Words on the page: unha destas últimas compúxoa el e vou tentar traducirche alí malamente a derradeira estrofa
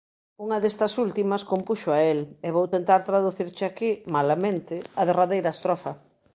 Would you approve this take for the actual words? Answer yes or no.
no